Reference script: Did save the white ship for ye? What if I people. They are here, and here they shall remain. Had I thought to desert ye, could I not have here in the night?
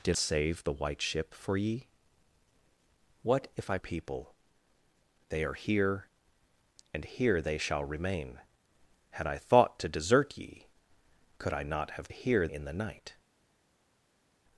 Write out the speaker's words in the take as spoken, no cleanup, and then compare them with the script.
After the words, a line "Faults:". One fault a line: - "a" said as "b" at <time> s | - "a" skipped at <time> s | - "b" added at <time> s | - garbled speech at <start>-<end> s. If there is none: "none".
Did save the white ship for ye? What if I people. They are here, and here they shall remain. Had I thought to desert ye, could I not have here in the night?
Faults:
none